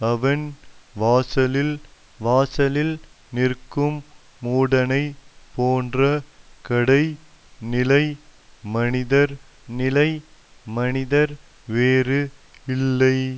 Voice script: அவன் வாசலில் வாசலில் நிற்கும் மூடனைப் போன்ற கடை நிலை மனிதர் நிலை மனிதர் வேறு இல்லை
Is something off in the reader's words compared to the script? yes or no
no